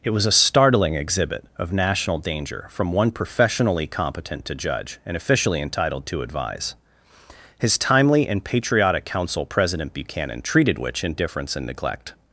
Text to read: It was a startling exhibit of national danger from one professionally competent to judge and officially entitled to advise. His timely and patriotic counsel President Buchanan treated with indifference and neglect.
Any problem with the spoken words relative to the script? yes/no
yes